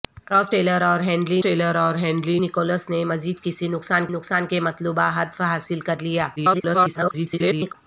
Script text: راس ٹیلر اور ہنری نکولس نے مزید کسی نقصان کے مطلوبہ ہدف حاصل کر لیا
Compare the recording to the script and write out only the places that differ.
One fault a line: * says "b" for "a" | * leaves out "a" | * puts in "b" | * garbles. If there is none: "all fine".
* puts in "ٹیلر اور ہنری"
* puts in "نقصان"
* garbles